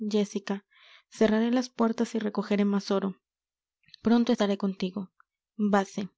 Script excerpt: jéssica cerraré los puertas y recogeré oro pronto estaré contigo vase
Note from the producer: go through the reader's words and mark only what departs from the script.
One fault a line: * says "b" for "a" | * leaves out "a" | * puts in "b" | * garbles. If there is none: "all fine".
* says "las" for "los"
* puts in "más"